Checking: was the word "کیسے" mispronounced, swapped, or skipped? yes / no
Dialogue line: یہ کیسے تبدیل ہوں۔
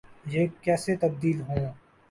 no